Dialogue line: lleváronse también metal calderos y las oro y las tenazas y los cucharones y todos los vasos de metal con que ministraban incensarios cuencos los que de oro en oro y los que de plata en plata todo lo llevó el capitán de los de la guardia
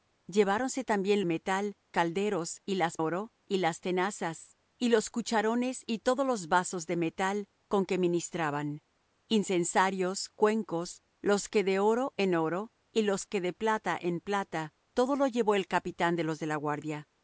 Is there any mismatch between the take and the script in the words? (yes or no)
no